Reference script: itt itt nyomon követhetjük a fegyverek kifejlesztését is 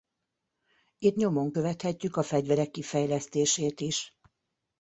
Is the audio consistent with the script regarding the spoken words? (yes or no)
no